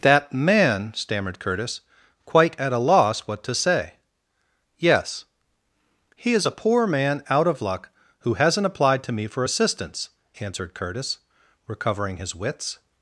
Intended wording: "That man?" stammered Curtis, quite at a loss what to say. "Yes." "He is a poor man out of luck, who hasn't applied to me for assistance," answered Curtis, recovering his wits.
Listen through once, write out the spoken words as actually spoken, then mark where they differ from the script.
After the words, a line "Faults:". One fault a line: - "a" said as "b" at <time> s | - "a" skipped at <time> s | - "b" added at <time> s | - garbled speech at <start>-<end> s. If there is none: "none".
"That man?" stammered Curtis, quite at a loss what to say. "Yes." "He is a poor man out of luck, who hasn't applied to me for assistance," answered Curtis, recovering his wits.
Faults:
none